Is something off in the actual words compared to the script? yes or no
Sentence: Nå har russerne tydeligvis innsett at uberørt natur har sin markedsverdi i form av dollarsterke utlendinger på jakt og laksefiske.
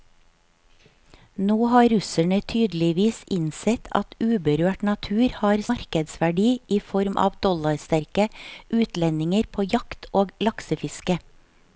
yes